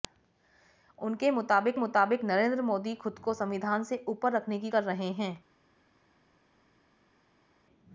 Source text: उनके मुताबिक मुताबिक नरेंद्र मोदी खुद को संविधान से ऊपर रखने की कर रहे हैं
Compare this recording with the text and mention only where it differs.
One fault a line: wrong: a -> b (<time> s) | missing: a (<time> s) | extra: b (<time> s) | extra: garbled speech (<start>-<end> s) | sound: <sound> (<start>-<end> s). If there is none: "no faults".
no faults